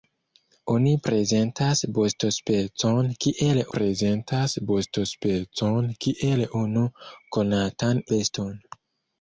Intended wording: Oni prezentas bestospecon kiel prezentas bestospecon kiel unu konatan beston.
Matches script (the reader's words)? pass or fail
pass